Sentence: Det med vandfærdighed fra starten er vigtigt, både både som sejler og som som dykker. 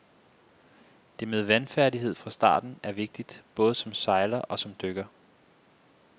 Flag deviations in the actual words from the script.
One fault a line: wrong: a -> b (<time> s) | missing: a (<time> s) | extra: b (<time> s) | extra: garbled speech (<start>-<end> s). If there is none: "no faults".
missing: både (3.8 s)
missing: som (4.8 s)